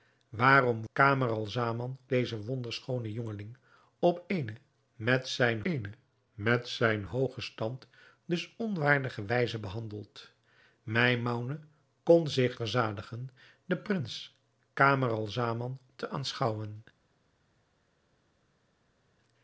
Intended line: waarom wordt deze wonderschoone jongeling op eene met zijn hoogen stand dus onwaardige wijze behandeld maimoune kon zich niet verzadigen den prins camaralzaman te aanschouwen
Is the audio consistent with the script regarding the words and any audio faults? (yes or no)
no